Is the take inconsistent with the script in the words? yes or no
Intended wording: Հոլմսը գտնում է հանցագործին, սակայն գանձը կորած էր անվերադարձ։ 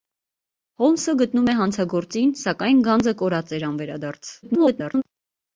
yes